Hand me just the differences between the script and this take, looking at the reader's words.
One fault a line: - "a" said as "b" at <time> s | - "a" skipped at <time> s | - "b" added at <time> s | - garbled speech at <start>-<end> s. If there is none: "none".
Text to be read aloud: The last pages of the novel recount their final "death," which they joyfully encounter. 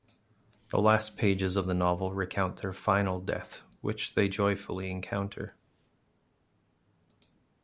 none